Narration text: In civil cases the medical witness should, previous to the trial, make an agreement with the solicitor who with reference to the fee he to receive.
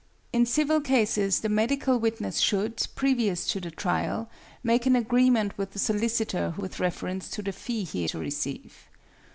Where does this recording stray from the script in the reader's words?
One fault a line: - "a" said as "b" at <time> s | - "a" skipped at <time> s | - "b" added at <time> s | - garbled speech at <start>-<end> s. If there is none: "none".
none